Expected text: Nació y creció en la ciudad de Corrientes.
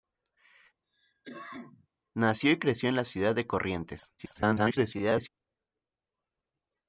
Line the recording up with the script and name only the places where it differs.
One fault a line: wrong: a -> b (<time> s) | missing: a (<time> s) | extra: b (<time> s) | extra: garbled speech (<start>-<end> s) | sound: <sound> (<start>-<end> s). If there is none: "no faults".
sound: cough (0.8-1.9 s)
extra: garbled speech (4.2-5.3 s)